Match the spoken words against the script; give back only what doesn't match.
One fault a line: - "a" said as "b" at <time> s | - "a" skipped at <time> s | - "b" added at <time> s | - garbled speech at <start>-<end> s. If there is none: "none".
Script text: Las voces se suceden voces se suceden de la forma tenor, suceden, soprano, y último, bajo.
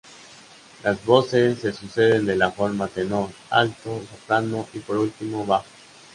- "voces se suceden" skipped at 2.2 s
- "suceden" said as "alto" at 3.5 s
- "por" added at 4.8 s